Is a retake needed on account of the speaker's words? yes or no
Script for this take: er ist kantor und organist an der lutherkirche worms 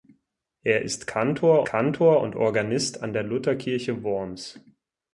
yes